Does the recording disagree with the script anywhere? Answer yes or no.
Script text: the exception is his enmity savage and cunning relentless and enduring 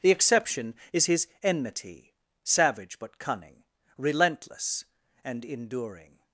yes